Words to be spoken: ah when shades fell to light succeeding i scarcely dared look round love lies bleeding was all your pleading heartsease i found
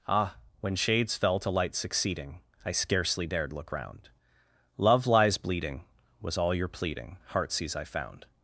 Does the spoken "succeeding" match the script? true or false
true